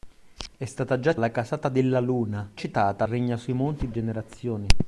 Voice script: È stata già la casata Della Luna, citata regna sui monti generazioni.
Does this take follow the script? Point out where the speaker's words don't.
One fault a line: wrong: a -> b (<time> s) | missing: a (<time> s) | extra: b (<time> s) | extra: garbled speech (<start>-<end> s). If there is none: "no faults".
no faults